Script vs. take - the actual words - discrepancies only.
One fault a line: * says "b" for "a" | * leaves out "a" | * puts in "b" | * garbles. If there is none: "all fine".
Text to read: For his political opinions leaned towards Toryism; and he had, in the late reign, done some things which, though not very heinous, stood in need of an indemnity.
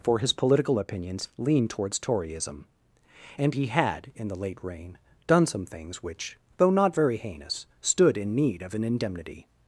all fine